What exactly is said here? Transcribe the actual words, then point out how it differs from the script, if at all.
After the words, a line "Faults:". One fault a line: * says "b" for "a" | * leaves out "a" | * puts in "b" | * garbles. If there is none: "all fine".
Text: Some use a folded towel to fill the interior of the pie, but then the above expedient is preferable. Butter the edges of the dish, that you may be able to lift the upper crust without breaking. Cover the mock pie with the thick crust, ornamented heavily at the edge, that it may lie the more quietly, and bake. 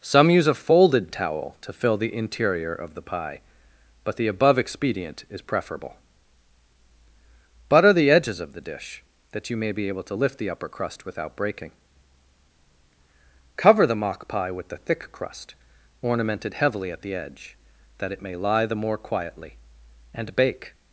Some use a folded towel to fill the interior of the pie, but the above expedient is preferable. Butter the edges of the dish, that you may be able to lift the upper crust without breaking. Cover the mock pie with the thick crust, ornamented heavily at the edge, that it may lie the more quietly, and bake.
Faults:
* leaves out "then"